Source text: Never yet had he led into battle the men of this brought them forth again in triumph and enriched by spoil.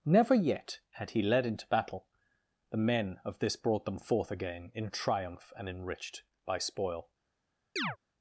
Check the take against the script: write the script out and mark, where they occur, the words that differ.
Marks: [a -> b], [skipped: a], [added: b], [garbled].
Never yet had he led into battle the men of this brought them forth again in triumph and enriched by spoil.